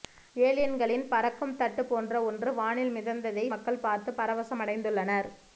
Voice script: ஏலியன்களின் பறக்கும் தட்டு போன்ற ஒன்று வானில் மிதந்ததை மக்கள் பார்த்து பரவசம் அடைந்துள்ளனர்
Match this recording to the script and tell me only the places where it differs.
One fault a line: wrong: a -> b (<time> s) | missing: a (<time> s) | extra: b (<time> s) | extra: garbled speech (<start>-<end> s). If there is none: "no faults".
no faults